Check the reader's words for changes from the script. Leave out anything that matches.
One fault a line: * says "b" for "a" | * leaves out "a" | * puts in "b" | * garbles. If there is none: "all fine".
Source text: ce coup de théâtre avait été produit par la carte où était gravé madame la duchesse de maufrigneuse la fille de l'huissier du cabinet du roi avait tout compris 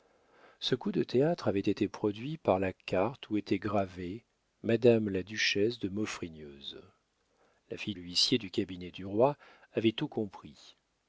* leaves out "de"